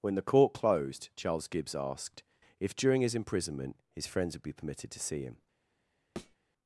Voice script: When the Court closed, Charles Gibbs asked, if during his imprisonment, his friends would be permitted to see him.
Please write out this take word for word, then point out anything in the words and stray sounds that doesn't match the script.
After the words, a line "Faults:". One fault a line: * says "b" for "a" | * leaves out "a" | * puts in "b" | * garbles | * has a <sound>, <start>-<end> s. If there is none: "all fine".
When the Court closed, Charles Gibbs asked, if during his imprisonment, his friends would be permitted to see him.
Faults:
* has a thud, 6.2-6.4 s